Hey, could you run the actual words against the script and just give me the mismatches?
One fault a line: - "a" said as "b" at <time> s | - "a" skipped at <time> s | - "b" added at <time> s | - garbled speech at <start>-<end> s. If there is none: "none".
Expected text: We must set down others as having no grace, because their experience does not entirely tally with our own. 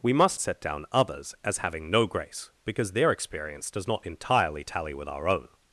none